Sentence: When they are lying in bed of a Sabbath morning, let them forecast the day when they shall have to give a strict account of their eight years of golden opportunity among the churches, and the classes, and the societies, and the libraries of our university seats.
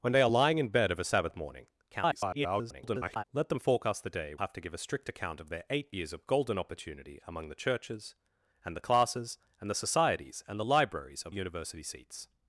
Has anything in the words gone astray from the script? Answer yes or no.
yes